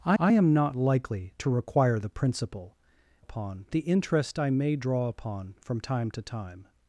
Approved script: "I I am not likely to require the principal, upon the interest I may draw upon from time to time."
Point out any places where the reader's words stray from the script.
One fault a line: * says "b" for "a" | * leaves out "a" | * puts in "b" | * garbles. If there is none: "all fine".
all fine